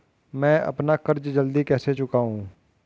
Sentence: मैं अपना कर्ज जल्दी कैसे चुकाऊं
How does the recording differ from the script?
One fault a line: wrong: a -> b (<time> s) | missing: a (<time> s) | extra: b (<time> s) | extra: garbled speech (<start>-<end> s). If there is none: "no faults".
no faults